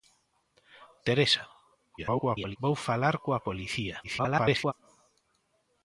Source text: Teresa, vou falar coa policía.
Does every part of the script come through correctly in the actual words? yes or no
no